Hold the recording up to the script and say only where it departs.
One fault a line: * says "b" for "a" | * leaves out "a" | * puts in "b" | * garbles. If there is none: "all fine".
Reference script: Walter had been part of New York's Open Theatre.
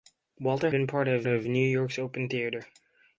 * leaves out "had"
* puts in "of"